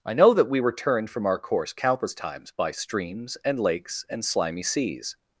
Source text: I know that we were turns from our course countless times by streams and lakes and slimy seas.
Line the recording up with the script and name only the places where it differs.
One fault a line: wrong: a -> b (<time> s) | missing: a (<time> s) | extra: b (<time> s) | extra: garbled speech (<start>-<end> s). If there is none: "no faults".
wrong: turns -> turned (0.7 s)